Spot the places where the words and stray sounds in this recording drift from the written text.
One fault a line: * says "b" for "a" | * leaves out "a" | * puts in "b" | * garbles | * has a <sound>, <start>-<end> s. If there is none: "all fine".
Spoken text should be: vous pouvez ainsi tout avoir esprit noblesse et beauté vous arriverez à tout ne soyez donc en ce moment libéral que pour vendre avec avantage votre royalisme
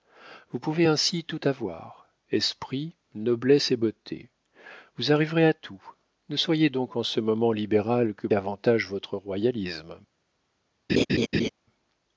* leaves out "pour vendre avec"
* has a laugh, 10.9-11.5 s